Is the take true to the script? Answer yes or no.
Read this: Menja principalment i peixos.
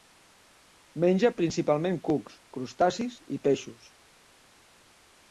no